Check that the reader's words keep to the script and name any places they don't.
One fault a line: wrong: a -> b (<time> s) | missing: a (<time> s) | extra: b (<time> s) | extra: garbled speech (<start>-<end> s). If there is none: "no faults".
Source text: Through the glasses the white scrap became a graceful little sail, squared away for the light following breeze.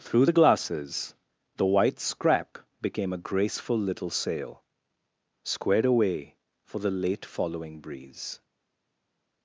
wrong: light -> late (6.9 s)